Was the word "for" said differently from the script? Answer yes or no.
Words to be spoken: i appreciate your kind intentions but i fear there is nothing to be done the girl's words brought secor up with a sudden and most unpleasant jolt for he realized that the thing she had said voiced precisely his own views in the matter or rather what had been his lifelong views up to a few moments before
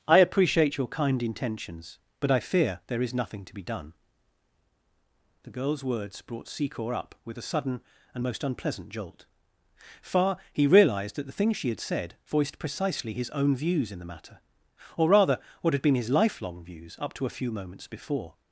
yes